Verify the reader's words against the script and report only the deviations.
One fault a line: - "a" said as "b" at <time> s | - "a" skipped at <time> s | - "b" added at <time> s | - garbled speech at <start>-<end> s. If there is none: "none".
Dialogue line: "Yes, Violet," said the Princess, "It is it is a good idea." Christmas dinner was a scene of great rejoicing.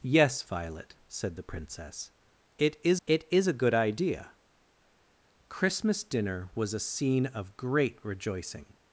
none